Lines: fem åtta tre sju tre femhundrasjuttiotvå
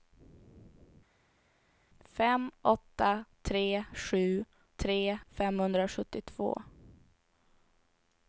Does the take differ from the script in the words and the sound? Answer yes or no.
no